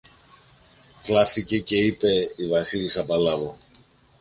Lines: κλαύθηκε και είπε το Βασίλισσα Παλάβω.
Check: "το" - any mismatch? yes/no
yes